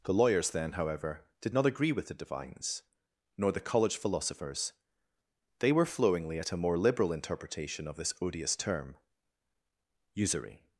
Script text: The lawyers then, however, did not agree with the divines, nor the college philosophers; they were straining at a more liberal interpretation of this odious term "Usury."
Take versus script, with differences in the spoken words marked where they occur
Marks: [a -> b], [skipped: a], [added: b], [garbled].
The lawyers then, however, did not agree with the divines, nor the college philosophers; they were [straining -> flowingly] at a more liberal interpretation of this odious term "Usury."